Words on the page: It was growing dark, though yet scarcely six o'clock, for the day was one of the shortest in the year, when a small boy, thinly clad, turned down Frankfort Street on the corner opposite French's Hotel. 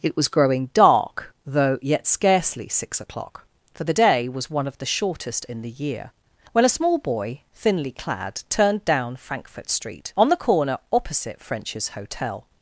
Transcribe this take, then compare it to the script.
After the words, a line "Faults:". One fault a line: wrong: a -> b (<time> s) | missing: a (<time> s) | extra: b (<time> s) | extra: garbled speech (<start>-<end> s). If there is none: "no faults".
It was growing dark, though yet scarcely six o'clock, for the day was one of the shortest in the year, when a small boy, thinly clad, turned down Frankfort Street on the corner opposite French's Hotel.
Faults:
no faults